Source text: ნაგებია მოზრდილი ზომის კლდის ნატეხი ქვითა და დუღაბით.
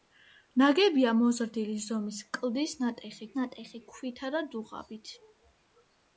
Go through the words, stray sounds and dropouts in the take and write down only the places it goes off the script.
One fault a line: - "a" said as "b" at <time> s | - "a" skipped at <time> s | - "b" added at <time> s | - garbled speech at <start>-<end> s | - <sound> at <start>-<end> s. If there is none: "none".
- "ნატეხი" added at 3.4 s